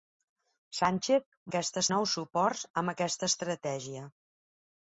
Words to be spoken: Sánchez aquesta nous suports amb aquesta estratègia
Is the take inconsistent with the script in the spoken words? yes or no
no